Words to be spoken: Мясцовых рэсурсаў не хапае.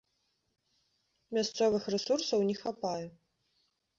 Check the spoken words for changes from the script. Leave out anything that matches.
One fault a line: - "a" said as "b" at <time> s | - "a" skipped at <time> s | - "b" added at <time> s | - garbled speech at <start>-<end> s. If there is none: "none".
none